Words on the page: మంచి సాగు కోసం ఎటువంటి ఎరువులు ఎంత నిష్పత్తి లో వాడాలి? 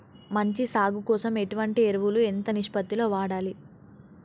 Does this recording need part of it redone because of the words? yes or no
no